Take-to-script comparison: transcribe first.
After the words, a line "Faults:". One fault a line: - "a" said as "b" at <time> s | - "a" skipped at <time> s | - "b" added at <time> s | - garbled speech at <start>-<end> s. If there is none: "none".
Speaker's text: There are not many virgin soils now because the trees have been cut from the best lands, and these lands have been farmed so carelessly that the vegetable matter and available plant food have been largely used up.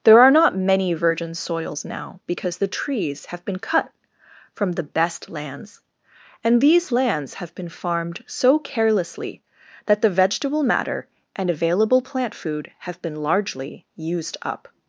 There are not many virgin soils now because the trees have been cut from the best lands, and these lands have been farmed so carelessly that the vegetable matter and available plant food have been largely used up.
Faults:
none